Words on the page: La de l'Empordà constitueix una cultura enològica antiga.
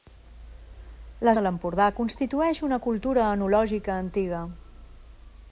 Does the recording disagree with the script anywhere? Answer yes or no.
no